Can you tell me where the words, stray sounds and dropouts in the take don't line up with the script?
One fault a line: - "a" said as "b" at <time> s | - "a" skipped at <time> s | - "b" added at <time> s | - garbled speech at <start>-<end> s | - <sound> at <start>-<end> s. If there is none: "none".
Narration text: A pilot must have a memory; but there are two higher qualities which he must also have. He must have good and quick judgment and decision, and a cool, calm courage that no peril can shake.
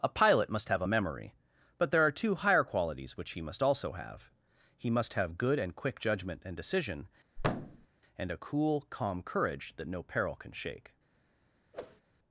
- thud at 7.4-7.9 s
- whoosh at 11.7-12.0 s